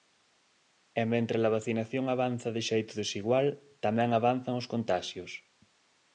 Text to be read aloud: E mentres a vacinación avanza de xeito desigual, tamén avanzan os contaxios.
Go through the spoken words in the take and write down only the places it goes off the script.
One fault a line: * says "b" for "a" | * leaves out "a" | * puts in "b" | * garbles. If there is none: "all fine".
all fine